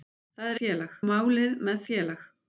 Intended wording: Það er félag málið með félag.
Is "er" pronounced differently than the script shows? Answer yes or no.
no